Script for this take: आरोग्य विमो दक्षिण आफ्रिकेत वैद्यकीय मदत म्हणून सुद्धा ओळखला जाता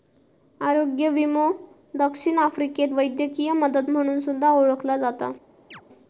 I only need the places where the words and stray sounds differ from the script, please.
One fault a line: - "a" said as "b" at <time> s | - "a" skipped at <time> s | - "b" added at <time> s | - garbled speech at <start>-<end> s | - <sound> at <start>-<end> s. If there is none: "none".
- chirp at 5.7-5.8 s